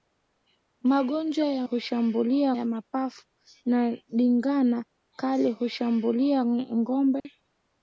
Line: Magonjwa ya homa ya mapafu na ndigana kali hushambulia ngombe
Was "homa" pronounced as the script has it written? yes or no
no